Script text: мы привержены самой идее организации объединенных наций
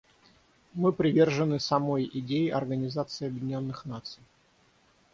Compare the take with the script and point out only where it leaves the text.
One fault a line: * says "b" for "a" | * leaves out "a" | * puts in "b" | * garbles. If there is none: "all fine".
all fine